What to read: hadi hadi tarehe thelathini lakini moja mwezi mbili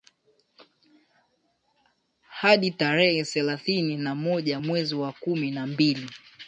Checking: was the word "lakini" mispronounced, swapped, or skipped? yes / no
yes